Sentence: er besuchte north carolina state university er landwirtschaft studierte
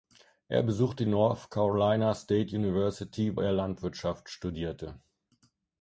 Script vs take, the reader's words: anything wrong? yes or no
no